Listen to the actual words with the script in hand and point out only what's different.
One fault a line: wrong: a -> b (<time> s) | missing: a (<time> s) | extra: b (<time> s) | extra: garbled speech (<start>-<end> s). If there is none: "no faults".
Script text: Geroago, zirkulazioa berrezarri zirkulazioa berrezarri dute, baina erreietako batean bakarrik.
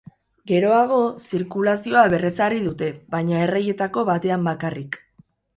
missing: zirkulazioa berrezarri (2.6 s)